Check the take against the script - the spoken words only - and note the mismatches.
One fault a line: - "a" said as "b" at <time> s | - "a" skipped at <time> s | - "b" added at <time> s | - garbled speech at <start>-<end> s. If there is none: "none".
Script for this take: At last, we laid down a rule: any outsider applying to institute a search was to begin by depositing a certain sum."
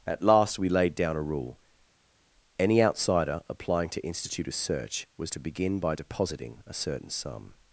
none